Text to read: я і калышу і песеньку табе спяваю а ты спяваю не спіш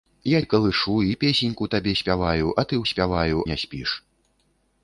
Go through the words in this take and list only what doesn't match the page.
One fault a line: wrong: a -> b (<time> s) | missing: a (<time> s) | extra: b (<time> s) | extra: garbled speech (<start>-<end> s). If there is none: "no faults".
no faults